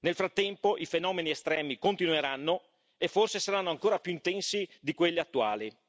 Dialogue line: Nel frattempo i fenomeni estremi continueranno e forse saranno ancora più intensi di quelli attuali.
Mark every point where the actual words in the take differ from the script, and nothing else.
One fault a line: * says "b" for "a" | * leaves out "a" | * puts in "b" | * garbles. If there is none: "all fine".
all fine